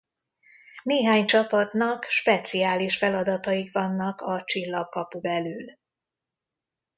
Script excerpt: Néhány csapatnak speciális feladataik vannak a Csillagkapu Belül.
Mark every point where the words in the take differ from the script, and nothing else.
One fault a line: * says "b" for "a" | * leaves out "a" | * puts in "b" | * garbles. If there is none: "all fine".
all fine